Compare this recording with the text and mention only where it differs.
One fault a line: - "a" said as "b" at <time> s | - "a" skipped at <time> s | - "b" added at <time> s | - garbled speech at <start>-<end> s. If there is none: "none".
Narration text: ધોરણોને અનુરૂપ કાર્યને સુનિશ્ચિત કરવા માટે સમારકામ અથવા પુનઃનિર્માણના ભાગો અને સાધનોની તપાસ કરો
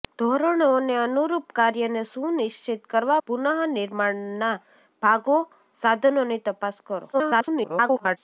- "માટે સમારકામ અથવા" skipped at 3.2 s
- "અને" skipped at 5.4 s
- garbled speech at 7.1-8.2 s